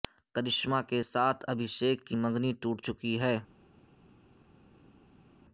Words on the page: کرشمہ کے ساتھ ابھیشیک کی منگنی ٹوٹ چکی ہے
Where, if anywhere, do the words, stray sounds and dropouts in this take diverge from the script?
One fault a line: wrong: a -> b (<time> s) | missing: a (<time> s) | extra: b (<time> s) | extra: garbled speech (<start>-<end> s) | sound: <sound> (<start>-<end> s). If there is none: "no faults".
no faults